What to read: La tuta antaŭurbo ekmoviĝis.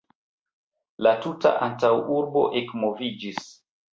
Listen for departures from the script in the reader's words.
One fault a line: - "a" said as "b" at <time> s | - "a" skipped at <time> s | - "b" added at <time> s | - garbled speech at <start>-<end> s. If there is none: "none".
none